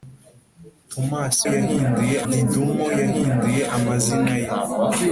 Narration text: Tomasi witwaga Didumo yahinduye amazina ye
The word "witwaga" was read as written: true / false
false